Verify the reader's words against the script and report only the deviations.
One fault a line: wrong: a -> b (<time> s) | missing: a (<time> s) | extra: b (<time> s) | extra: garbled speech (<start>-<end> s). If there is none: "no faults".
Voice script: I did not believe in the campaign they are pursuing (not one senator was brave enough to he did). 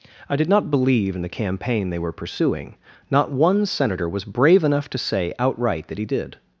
wrong: are -> were (2.0 s)
extra: say outright that (5.0 s)